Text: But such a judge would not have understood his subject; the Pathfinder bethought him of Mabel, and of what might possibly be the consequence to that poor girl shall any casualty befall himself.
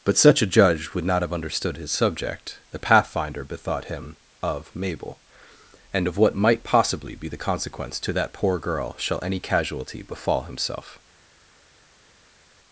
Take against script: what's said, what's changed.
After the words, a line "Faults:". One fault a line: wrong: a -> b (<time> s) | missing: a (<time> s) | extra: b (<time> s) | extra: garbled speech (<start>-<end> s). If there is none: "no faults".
But such a judge would not have understood his subject; the Pathfinder bethought him of Mabel, and of what might possibly be the consequence to that poor girl shall any casualty befall himself.
Faults:
no faults